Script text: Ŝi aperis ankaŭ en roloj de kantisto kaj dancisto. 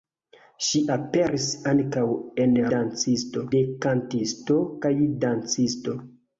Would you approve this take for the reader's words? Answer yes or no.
no